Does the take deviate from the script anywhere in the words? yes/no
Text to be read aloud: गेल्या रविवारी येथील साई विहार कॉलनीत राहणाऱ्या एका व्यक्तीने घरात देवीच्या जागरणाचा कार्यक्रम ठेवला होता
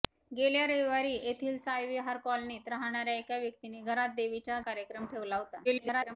yes